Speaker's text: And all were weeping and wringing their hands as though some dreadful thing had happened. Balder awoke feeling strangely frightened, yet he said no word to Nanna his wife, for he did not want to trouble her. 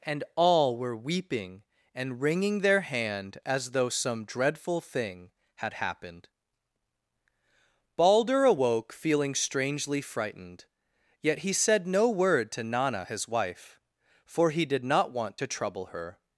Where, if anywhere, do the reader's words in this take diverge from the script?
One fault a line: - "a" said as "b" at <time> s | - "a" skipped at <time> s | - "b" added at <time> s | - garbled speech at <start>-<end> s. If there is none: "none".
- "hands" said as "hand" at 2.8 s